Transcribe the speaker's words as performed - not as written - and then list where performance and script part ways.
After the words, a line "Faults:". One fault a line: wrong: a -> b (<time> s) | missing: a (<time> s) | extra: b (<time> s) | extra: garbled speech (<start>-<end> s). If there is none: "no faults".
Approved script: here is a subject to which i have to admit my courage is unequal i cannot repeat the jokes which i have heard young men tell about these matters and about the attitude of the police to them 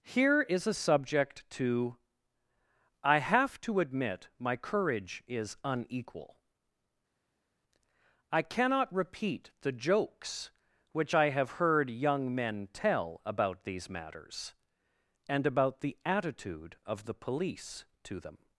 here is a subject to i have to admit my courage is unequal i cannot repeat the jokes which i have heard young men tell about these matters and about the attitude of the police to them
Faults:
missing: which (2.0 s)